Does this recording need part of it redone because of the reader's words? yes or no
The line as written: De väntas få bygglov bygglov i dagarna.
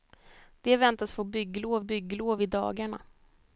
no